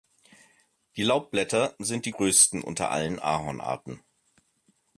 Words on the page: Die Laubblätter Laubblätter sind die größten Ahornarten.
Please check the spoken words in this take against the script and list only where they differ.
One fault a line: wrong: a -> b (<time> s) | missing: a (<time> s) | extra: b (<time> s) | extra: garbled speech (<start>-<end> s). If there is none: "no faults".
missing: Laubblätter (1.8 s)
extra: unter allen (2.6 s)